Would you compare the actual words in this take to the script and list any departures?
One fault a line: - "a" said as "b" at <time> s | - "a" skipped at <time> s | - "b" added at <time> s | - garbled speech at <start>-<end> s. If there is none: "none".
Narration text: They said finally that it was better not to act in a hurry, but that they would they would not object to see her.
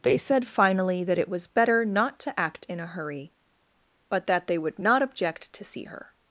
- "they would" skipped at 4.8 s